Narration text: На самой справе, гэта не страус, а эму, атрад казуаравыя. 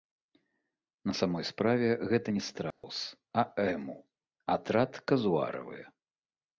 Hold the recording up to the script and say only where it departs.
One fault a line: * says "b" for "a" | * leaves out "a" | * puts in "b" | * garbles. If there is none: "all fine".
all fine